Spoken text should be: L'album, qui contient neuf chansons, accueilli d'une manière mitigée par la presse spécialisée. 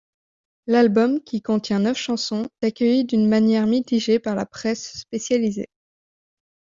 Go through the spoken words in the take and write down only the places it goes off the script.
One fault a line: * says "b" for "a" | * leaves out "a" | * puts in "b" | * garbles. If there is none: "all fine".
all fine